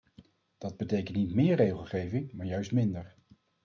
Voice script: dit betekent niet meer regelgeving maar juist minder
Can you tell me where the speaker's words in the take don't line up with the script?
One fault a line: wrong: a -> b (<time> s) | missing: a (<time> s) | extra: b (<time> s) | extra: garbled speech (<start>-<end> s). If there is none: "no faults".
wrong: dit -> dat (0.6 s)